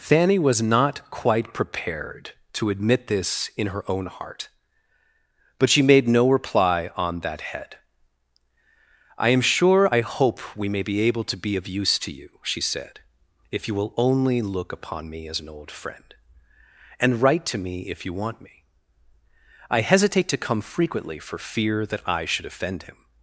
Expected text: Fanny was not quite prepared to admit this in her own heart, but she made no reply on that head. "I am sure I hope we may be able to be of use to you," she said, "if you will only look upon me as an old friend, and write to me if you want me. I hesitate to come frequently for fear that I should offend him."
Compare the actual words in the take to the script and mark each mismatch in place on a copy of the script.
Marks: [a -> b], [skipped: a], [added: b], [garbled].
Fanny was not quite prepared to admit this in her own heart, but she made no reply on that head. "I am sure I hope we may be able to be of use to you," she said, "if you will only look upon me as an old friend, and write to me if you want me. I hesitate to come frequently for fear that I should offend him."